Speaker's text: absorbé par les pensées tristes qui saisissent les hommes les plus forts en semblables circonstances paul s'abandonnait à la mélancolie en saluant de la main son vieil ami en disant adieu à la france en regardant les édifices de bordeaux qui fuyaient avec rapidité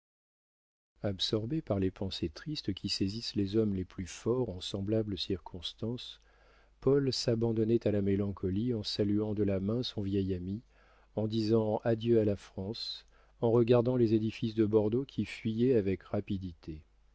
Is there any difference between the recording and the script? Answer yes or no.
no